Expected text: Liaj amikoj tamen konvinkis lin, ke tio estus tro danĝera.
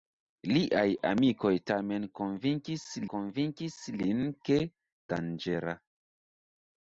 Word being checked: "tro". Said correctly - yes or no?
no